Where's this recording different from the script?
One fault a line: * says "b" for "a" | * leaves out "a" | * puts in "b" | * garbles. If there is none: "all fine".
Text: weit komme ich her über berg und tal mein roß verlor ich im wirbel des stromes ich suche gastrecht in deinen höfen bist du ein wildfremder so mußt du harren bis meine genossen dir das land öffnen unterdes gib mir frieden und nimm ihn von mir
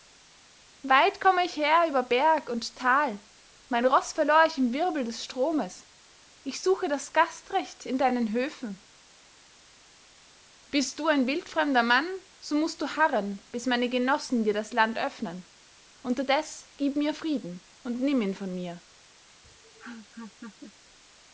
* puts in "das"
* puts in "mann"